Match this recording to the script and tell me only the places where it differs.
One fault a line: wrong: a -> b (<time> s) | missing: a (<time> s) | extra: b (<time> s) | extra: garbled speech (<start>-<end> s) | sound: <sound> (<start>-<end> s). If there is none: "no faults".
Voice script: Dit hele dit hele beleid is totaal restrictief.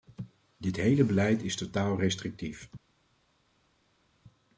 missing: dit hele (1.0 s)